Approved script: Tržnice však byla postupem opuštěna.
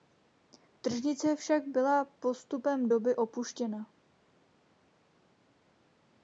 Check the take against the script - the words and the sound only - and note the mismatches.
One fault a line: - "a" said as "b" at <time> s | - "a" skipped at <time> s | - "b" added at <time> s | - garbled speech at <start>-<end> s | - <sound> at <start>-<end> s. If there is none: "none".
- "doby" added at 2.9 s